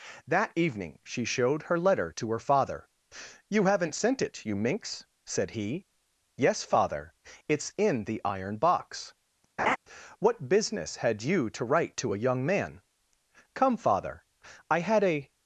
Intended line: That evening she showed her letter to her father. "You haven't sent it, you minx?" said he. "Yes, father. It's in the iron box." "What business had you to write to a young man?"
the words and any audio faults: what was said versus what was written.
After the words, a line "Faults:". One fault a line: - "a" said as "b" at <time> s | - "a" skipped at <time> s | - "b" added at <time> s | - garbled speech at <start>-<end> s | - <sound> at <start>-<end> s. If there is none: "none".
That evening she showed her letter to her father. "You haven't sent it, you minx?" said he. "Yes, father. It's in the iron box." "What business had you to write to a young man?" "Come, father. I had a
Faults:
- laugh at 9.6-9.8 s
- "Come father I had a" added at 13.5 s